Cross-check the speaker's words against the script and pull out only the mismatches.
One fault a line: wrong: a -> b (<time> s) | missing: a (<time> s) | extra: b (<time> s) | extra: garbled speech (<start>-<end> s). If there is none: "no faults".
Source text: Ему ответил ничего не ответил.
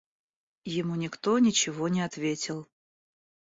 wrong: ответил -> никто (0.9 s)